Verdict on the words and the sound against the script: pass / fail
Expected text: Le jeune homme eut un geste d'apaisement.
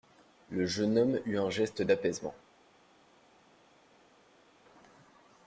pass